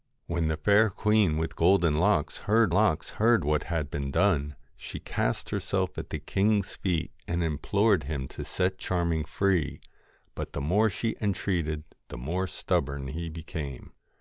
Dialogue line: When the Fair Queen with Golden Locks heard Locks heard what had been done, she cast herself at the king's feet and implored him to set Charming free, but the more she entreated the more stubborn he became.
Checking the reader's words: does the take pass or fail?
pass